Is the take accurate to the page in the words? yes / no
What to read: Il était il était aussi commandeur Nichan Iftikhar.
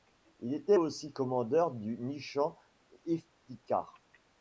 no